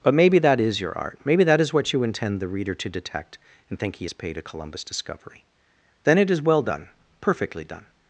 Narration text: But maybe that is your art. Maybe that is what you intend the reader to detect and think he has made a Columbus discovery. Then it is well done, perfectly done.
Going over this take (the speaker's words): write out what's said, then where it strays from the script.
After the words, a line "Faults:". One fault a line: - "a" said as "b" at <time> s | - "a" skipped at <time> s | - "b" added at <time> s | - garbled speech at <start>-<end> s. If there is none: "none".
But maybe that is your art. Maybe that is what you intend the reader to detect and think he has paid a Columbus discovery. Then it is well done, perfectly done.
Faults:
- "made" said as "paid" at 4.1 s